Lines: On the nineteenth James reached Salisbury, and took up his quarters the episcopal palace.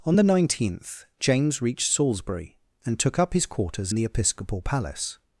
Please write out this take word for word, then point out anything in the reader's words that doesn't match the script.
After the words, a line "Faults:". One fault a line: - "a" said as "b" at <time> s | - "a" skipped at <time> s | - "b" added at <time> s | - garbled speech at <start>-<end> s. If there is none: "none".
On the nineteenth James reached Salisbury, and took up his quarters the episcopal palace.
Faults:
none